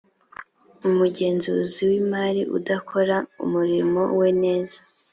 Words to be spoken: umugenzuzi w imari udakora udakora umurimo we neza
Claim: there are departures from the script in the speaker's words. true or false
true